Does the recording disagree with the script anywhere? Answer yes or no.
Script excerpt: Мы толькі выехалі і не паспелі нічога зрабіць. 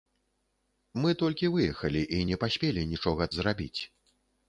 no